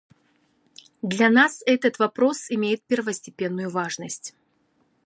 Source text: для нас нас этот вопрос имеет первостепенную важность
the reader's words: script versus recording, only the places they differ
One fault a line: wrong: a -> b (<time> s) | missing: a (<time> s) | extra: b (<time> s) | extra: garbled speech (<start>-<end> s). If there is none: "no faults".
missing: нас (1.6 s)